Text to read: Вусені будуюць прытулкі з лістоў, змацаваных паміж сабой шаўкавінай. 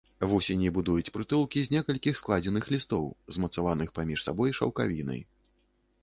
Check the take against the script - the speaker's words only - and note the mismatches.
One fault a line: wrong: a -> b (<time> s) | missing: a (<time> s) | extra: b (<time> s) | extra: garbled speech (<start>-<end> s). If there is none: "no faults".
extra: некалькіх складзеных (1.8 s)